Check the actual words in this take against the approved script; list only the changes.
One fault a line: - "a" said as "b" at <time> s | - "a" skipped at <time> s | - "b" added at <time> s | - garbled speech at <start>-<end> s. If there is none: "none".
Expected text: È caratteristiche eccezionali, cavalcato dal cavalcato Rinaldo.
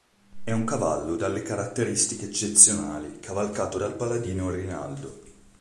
- "un cavallo dalle" added at 0.5 s
- "cavalcato" said as "paladino" at 3.9 s